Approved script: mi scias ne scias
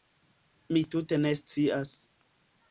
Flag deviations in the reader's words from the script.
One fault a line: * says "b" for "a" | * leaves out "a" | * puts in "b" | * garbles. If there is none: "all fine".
* says "tute" for "scias"